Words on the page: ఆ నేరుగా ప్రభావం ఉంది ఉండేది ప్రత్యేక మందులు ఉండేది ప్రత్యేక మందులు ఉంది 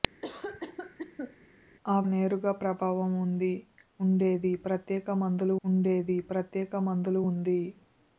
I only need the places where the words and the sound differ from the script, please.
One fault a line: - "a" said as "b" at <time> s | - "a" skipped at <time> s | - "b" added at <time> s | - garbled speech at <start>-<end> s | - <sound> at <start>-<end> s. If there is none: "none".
- cough at 0.2-1.4 s